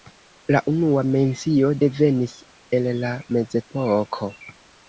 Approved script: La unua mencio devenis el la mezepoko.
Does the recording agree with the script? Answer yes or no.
yes